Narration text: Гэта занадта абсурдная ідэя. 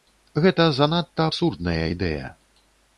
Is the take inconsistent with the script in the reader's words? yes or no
no